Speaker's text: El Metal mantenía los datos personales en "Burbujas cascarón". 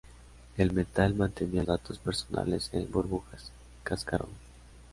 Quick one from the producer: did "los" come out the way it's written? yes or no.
no